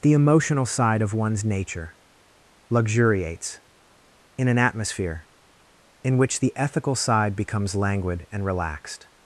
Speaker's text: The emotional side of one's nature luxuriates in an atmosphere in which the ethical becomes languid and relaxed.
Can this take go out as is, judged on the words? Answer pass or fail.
fail